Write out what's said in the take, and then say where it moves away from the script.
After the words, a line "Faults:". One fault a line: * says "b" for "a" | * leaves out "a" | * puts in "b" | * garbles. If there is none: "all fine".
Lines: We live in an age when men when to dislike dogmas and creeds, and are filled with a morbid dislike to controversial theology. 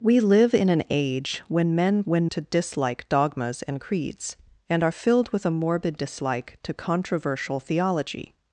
We live in an age when men when to dislike dogmas and creeds, and are filled with a morbid dislike to controversial theology.
Faults:
all fine